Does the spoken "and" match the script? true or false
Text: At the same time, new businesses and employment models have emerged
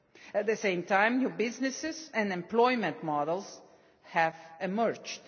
true